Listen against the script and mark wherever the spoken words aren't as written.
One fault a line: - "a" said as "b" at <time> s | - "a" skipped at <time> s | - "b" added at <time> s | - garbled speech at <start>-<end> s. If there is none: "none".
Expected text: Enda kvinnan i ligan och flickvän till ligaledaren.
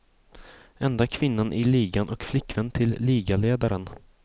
none